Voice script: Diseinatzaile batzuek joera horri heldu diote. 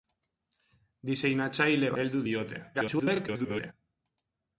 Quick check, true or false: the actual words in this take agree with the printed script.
false